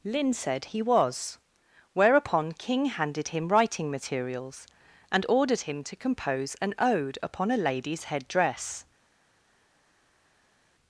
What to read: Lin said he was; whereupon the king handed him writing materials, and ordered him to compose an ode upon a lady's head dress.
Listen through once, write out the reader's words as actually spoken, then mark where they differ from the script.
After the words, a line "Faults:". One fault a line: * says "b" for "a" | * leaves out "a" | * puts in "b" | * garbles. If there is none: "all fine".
Lin said he was; whereupon king handed him writing materials, and ordered him to compose an ode upon a lady's head dress.
Faults:
* leaves out "the"